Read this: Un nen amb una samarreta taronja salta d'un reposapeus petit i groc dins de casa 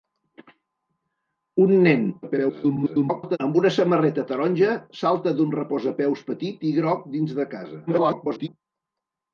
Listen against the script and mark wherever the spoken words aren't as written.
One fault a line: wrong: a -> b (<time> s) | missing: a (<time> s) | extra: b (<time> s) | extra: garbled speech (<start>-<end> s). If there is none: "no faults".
extra: garbled speech (2.2-3.4 s)
extra: garbled speech (7.9-8.5 s)